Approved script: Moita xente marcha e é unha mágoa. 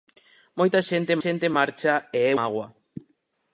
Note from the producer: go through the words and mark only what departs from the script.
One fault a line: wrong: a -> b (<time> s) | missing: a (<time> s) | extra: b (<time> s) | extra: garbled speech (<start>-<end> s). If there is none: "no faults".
extra: xente (1.2 s)
missing: unha (2.3 s)